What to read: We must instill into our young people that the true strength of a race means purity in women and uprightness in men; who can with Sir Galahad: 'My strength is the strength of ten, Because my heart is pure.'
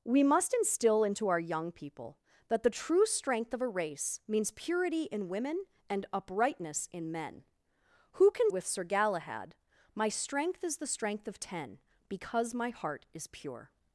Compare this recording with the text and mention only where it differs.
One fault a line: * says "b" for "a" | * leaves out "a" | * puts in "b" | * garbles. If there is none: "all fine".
all fine